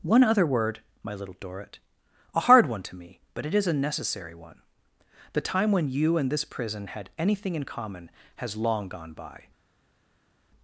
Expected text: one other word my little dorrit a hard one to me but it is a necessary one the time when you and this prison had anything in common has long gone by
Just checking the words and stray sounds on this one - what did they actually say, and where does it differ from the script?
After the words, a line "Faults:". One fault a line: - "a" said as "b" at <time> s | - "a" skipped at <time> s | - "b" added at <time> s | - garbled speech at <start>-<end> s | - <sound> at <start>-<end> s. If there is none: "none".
one other word my little dorrit a hard one to me but it is a necessary one the time when you and this prison had anything in common has long gone by
Faults:
none